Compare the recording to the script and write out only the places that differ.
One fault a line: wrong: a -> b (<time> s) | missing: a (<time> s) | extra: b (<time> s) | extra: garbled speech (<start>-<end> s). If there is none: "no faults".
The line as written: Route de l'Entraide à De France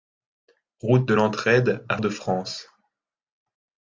no faults